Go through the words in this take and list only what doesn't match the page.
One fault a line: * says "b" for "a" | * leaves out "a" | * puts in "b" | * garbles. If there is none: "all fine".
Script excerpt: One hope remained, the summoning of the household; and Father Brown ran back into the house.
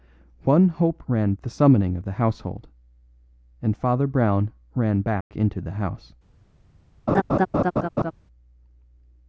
* says "ran" for "remained"